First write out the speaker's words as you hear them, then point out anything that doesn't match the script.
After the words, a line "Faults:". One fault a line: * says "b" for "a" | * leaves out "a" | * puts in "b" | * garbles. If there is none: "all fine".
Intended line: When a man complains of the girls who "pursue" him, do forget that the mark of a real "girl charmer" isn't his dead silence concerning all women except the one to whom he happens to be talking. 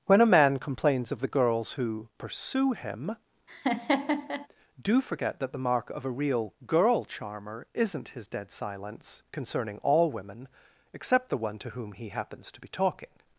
When a man complains of the girls who "pursue" him, do forget that the mark of a real "girl charmer" isn't his dead silence concerning all women except the one to whom he happens to be talking.
Faults:
all fine